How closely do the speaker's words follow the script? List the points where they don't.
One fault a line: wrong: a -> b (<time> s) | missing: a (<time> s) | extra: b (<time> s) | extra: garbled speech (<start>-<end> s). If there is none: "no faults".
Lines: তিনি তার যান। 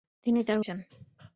no faults